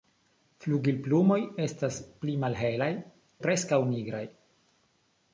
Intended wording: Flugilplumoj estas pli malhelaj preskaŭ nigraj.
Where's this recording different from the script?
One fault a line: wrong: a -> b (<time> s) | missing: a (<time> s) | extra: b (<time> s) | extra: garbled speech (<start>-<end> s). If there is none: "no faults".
no faults